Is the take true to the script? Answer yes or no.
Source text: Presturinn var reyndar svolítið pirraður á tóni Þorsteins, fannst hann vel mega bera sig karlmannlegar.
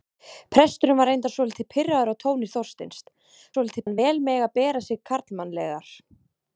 no